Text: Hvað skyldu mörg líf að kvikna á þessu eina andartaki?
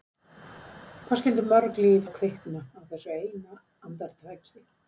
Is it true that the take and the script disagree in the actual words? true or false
false